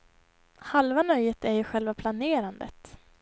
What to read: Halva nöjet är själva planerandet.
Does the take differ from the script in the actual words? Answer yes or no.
yes